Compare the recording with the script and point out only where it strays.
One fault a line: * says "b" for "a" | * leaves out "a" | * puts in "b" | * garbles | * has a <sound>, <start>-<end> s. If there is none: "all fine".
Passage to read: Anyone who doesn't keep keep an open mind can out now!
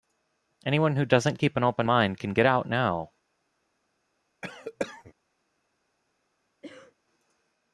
* leaves out "keep"
* puts in "get"
* has a cough, 4.4-5.1 s
* has a cough, 6.6-6.9 s